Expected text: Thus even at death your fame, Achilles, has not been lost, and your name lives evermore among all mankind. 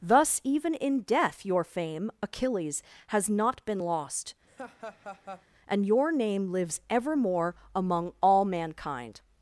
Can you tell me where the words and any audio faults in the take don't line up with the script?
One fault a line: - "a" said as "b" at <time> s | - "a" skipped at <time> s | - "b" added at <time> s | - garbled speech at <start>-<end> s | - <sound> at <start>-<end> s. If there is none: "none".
- "at" said as "in" at 0.7 s
- laugh at 4.5-5.5 s